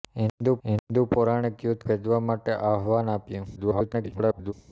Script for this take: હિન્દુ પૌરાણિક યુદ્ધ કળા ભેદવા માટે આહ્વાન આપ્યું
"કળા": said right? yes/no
no